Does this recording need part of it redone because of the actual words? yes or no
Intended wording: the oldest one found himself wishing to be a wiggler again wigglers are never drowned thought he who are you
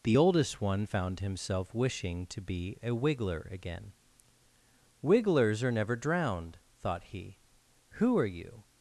no